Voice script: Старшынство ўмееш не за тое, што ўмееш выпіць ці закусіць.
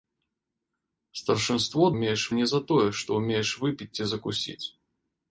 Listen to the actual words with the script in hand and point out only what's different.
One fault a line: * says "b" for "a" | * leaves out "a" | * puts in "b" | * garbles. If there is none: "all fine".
all fine